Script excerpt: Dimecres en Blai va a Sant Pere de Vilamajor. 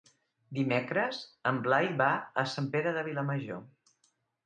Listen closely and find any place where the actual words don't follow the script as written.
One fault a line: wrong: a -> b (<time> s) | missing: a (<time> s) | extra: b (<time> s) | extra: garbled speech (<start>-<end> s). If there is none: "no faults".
no faults